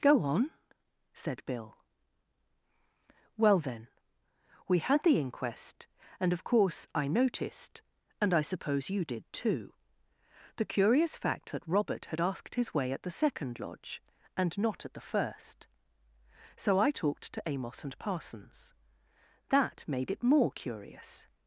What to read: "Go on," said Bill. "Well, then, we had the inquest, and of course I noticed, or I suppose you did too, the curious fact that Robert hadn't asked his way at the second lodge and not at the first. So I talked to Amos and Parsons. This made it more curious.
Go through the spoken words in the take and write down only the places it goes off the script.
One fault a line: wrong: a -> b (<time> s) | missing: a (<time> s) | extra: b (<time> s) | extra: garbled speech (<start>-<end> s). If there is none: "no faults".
wrong: or -> and (8.2 s)
wrong: hadn't -> had (12.1 s)
wrong: This -> That (19.5 s)